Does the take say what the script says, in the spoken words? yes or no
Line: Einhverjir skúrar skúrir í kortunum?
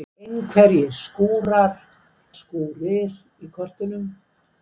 yes